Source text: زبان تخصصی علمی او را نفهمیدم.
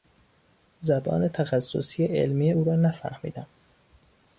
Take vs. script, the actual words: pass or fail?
pass